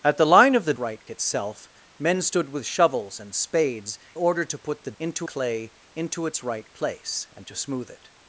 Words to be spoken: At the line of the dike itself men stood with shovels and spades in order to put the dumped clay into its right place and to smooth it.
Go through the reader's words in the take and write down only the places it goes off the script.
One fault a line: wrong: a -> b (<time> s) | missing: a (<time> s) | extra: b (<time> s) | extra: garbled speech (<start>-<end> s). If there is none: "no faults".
wrong: dike -> right (0.8 s)
missing: in (4.0 s)
wrong: dumped -> into (5.0 s)